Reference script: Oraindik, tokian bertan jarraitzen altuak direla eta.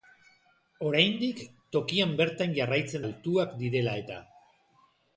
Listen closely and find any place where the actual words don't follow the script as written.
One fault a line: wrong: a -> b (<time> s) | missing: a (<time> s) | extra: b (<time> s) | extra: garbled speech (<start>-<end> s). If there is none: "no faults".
no faults